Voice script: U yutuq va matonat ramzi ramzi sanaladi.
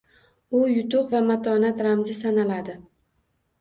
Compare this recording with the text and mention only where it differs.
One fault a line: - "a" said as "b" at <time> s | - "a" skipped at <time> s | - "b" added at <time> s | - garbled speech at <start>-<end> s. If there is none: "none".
- "ramzi" skipped at 2.2 s